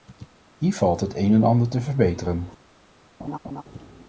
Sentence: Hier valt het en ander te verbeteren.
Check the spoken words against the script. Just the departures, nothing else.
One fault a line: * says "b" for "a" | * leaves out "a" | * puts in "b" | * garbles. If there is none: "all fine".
* puts in "een"